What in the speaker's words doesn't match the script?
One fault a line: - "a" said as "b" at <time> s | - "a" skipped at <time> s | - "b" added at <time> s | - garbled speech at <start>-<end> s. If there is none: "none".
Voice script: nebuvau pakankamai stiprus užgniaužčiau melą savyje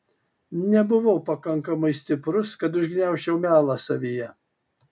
- "kad" added at 2.6 s